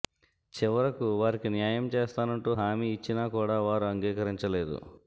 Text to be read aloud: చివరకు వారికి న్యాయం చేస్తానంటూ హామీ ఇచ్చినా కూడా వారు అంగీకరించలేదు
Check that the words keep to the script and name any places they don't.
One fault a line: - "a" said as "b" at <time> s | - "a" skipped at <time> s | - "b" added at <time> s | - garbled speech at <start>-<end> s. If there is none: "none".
none